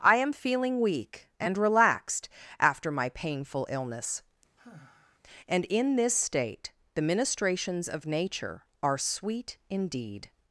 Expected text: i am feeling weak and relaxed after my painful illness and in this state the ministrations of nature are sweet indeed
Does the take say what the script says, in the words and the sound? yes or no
no